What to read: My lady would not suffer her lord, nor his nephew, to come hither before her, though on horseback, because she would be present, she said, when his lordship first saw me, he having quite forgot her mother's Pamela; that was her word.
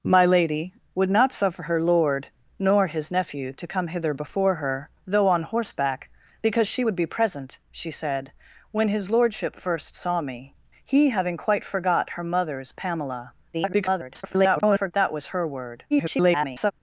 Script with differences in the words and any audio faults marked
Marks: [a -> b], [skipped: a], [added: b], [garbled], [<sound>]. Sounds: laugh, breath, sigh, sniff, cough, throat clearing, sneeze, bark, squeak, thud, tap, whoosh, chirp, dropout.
My lady would not suffer her lord, nor his nephew, to come hither before her, though on horseback, because she would be present, she said, when his lordship first saw me, he having quite forgot her mother's Pamela; [garbled] that was her word. [garbled]